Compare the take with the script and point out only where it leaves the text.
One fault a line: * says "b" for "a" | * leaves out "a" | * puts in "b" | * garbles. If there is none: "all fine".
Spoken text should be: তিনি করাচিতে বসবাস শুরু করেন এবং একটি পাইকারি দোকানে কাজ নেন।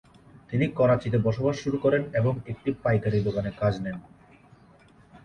all fine